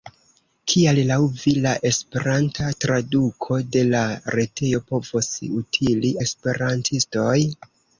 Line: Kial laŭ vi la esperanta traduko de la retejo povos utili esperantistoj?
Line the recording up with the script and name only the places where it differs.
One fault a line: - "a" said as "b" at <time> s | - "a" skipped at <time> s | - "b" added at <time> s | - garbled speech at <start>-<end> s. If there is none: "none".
none